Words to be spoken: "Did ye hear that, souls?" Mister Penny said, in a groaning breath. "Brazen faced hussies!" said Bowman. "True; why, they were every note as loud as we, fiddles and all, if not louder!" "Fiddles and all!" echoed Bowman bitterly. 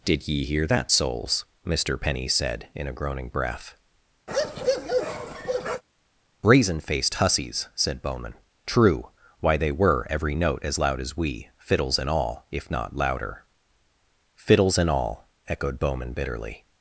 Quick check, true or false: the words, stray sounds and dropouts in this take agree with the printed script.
false